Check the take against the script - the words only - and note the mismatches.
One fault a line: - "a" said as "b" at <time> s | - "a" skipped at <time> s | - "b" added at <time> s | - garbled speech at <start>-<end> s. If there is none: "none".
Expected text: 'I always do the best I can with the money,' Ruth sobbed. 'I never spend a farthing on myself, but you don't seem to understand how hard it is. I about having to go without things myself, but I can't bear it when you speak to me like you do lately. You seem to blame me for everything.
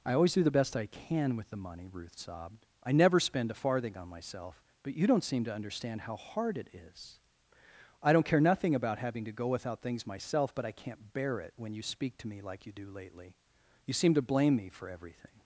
- "don't care nothing" added at 8.1 s